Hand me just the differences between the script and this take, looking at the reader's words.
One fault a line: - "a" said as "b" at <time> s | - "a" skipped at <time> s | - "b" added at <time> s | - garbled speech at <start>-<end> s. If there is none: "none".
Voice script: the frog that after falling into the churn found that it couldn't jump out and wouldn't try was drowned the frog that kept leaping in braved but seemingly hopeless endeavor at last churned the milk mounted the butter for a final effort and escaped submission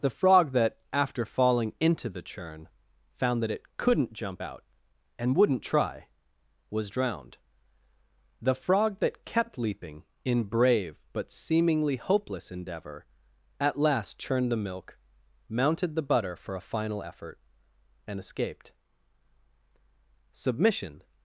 - "braved" said as "brave" at 10.4 s